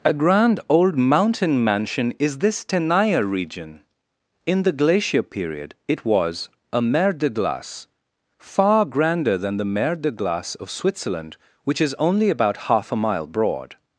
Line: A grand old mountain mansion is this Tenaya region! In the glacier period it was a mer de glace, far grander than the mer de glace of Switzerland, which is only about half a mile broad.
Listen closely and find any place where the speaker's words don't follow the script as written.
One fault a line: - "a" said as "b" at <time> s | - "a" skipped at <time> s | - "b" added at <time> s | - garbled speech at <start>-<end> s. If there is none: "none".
none